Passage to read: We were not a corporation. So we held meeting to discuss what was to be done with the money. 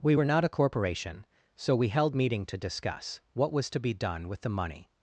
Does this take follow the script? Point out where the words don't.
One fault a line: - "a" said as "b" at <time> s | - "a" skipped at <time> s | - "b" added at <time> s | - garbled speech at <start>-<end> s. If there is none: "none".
none